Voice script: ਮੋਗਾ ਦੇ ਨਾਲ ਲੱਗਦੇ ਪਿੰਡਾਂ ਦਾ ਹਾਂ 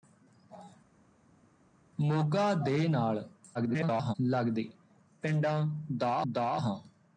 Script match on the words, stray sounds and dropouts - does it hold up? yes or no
no